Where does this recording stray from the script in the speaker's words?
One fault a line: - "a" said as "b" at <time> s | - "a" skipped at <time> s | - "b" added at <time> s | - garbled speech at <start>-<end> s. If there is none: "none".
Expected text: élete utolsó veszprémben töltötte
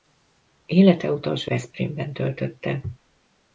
none